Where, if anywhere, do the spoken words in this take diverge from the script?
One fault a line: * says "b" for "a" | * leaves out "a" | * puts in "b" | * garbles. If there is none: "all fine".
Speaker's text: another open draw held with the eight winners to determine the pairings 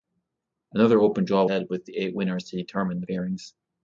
all fine